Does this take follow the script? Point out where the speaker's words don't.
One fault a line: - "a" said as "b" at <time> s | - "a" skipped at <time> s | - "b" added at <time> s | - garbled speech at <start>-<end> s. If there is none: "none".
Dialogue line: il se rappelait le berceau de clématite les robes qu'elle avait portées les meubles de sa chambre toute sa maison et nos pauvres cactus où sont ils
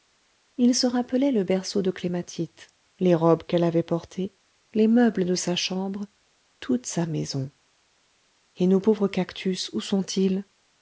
none